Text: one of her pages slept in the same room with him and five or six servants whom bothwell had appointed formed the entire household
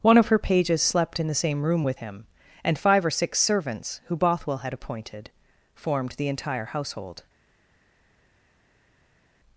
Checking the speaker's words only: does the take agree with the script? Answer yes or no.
no